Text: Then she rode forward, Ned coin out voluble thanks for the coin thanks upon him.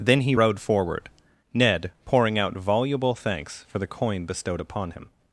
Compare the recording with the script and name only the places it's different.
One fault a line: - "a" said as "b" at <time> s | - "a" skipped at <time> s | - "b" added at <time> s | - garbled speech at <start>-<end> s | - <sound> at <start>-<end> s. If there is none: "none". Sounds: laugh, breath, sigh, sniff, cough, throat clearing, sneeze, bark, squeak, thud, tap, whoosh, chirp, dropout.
- "she" said as "he" at 0.2 s
- "coin" said as "pouring" at 2.0 s
- "thanks" said as "bestowed" at 4.3 s